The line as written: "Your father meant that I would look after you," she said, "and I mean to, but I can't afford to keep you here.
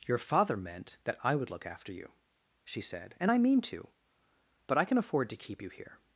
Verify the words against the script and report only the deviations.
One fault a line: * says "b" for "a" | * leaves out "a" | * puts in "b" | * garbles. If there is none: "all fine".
* says "can" for "can't"